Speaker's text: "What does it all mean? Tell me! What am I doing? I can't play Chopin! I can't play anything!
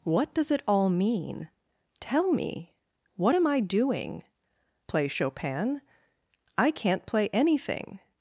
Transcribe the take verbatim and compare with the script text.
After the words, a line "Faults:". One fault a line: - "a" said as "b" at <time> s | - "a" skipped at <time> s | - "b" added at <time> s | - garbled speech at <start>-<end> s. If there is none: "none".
"What does it all mean? Tell me! What am I doing? play Chopin! I can't play anything!
Faults:
- "I can't" skipped at 4.2 s